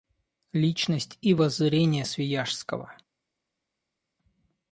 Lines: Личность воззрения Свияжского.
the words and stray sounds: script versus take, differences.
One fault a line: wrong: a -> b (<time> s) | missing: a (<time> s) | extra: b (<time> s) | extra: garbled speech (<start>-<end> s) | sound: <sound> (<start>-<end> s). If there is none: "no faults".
extra: и (1.2 s)